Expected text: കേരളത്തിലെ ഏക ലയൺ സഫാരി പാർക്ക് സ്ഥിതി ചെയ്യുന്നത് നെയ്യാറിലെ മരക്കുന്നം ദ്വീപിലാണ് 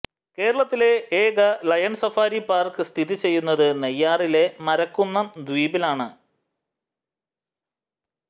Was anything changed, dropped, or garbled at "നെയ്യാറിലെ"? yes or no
no